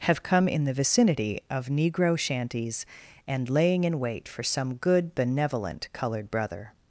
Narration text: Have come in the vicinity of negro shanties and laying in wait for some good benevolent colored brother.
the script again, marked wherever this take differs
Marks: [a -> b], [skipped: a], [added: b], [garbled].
Have come in the vicinity of negro shanties and laying in wait for some good benevolent colored brother.